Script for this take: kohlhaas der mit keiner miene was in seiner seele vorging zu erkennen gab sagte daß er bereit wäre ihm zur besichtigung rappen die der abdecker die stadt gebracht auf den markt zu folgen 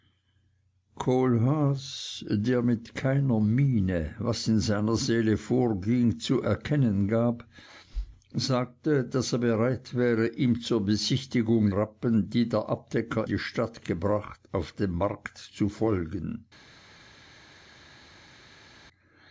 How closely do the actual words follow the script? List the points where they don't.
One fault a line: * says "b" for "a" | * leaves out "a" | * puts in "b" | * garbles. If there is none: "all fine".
all fine